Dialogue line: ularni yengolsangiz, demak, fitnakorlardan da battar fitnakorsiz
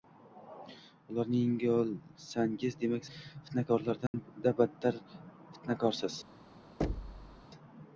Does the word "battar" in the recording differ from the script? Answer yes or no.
no